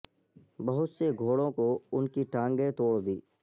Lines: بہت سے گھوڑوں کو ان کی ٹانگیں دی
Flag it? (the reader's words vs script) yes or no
yes